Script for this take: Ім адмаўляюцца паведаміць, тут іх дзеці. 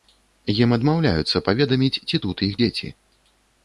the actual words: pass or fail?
fail